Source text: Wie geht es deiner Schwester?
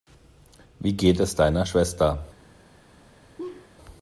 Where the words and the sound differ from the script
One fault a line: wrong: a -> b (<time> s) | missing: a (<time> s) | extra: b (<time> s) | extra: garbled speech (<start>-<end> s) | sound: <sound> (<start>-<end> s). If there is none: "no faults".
sound: laugh (3.4-3.7 s)